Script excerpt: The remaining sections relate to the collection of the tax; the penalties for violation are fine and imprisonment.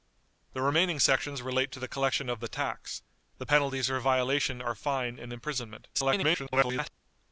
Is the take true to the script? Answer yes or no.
no